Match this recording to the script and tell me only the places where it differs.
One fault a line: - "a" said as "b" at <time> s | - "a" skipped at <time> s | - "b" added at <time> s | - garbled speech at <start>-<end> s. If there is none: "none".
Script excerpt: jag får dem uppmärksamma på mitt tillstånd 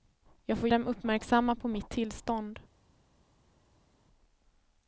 none